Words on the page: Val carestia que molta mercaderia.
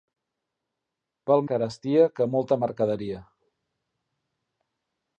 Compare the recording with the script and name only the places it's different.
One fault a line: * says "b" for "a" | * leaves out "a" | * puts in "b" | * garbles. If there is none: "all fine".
all fine